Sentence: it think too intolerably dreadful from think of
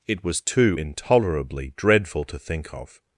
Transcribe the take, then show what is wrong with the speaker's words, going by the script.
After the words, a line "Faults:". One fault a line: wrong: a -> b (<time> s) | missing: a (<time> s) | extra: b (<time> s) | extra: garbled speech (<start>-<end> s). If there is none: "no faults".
it was too intolerably dreadful to think of
Faults:
wrong: think -> was (0.2 s)
wrong: from -> to (2.3 s)